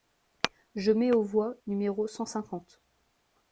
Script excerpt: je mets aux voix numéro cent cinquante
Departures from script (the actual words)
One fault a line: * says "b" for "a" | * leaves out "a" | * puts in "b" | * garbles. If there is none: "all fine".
all fine